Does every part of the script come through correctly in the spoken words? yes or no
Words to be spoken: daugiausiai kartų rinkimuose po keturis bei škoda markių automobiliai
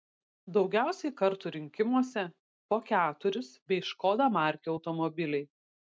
yes